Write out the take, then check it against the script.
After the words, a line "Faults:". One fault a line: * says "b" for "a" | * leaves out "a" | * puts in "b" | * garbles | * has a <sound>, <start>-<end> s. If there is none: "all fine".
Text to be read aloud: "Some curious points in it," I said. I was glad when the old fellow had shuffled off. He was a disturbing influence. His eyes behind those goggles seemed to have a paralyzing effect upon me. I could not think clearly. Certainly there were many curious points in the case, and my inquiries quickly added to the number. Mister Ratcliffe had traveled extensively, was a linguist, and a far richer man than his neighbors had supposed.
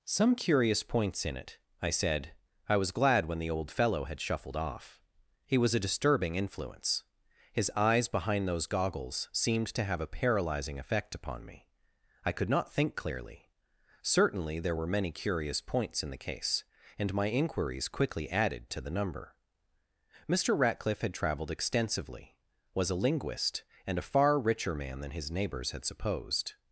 "Some curious points in it," I said. I was glad when the old fellow had shuffled off. He was a disturbing influence. His eyes behind those goggles seemed to have a paralyzing effect upon me. I could not think clearly. Certainly there were many curious points in the case, and my inquiries quickly added to the number. Mister Ratcliffe had traveled extensively, was a linguist, and a far richer man than his neighbors had supposed.
Faults:
all fine